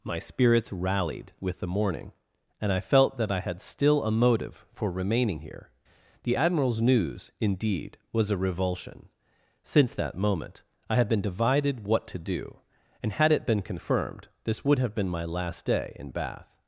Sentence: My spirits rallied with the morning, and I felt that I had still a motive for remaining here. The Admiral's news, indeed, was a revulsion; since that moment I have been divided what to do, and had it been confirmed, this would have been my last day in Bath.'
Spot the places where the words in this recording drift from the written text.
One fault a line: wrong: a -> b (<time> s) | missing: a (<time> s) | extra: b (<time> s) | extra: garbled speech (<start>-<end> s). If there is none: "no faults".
wrong: have -> had (10.9 s)